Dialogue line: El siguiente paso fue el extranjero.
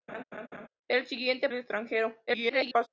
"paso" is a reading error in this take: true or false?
true